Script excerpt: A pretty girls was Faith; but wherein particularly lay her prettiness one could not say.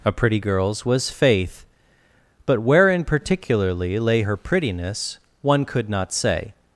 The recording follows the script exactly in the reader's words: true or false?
true